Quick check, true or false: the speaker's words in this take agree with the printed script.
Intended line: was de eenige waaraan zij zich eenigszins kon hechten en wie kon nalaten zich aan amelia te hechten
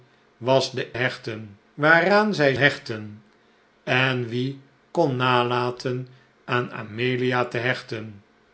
false